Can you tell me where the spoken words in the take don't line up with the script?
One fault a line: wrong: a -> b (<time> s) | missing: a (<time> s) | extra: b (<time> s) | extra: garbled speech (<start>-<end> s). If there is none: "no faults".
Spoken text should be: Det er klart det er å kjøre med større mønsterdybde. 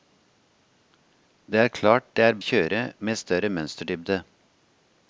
no faults